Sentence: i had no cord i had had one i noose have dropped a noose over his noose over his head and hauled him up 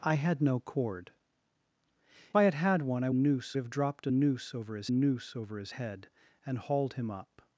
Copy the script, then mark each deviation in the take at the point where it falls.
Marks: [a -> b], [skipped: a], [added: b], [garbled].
i had no cord i had had one i noose have dropped a noose over his noose over his head and hauled him up